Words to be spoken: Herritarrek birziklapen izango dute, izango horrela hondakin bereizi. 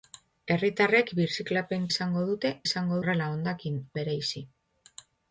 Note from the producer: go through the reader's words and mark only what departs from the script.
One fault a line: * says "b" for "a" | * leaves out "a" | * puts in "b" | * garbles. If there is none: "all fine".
all fine